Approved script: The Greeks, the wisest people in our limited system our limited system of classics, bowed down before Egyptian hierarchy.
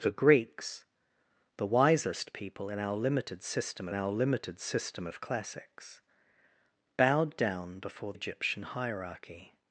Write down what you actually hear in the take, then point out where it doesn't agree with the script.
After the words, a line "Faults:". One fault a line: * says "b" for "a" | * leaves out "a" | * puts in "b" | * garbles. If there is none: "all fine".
The Greeks, the wisest people in our limited system our limited system of classics, bowed down before Egyptian hierarchy.
Faults:
all fine